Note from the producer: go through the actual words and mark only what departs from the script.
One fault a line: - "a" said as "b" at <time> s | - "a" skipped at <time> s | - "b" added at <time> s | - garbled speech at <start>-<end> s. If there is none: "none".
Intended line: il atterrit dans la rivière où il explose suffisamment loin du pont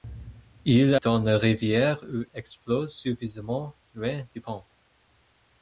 - "atterrit" skipped at 0.9 s
- "il" skipped at 2.2 s